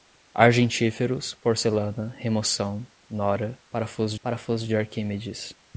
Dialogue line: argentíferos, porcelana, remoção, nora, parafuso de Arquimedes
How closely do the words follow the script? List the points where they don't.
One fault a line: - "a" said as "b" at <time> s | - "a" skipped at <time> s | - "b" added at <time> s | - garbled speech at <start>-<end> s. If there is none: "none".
- "parafuso" added at 4.2 s